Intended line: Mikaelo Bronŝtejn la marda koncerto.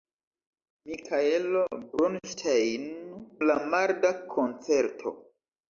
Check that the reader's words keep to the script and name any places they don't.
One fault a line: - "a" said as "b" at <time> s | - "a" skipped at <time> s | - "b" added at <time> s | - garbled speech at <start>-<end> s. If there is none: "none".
none